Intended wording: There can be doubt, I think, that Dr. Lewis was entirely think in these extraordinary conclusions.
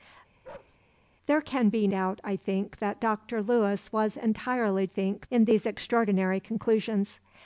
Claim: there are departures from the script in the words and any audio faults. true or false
true